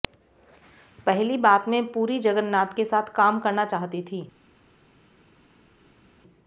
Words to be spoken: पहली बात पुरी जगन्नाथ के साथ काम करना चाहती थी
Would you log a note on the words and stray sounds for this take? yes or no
yes